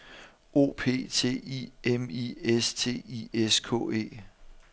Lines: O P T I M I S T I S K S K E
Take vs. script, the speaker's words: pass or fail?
fail